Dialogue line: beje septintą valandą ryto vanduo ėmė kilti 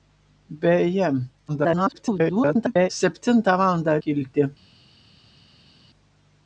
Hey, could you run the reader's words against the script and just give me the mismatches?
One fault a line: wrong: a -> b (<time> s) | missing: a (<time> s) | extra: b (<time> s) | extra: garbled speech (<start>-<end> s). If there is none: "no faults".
extra: garbled speech (1.5-2.9 s)
missing: ryto vanduo ėmė (4.0 s)